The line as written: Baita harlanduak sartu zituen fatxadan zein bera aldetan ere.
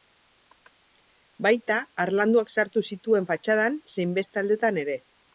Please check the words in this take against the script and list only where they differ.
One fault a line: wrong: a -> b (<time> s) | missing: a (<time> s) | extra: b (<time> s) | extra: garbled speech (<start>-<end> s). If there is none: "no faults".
wrong: bera -> beste (4.2 s)